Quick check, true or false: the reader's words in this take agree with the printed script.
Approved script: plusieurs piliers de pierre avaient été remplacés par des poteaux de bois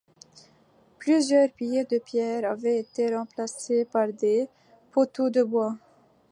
true